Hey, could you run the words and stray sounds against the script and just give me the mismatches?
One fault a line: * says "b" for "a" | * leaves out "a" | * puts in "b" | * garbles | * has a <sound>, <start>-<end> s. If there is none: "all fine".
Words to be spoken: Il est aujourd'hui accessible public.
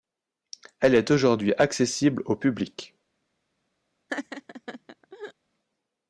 * says "Elle" for "Il"
* puts in "au"
* has a laugh, 4.1-5.3 s